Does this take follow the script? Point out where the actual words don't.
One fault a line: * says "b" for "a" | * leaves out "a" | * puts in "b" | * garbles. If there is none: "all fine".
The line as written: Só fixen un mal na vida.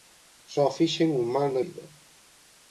all fine